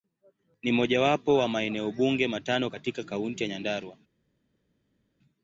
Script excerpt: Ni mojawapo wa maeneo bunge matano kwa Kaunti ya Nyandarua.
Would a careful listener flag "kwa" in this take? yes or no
yes